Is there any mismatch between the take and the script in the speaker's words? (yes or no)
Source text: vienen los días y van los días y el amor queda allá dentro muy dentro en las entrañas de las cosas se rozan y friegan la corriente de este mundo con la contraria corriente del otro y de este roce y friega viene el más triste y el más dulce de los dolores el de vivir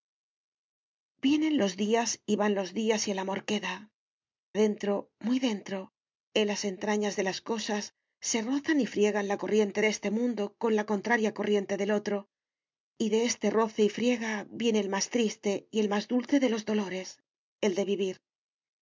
yes